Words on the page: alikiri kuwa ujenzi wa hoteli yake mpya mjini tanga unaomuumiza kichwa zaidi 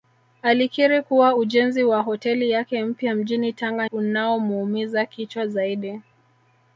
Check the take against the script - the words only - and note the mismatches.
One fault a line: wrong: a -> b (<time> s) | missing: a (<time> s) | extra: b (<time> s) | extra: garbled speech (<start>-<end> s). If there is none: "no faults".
no faults